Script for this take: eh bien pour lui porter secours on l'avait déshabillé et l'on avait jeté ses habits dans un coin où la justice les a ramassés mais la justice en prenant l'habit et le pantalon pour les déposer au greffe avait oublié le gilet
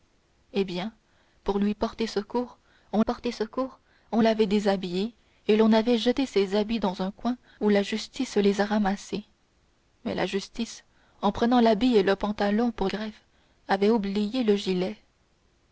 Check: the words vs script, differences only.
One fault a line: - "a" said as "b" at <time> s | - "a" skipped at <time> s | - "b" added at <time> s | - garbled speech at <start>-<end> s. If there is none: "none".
- "porter secours on" added at 3.0 s
- "les déposer au" skipped at 12.9 s